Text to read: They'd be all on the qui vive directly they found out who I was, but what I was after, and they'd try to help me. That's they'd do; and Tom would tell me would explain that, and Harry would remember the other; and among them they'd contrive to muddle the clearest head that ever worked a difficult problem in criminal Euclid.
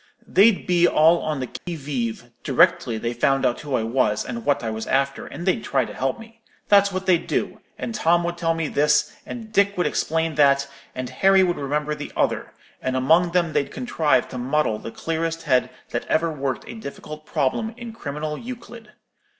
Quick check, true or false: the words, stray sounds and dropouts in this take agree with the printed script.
false